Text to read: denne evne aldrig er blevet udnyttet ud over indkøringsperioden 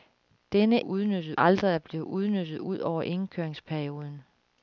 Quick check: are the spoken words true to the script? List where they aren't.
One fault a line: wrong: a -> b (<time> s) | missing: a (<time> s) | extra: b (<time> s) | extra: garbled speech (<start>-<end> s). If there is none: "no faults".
wrong: evne -> udnyttet (0.8 s)